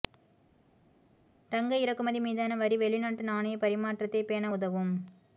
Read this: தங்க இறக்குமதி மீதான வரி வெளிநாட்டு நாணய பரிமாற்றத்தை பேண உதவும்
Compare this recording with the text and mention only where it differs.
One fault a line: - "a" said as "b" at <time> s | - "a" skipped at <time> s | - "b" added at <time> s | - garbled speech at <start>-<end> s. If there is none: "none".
none